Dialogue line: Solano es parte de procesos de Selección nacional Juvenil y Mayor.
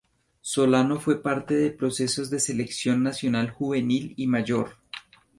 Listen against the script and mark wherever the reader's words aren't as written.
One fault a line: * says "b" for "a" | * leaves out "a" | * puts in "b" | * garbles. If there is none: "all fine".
* says "fue" for "es"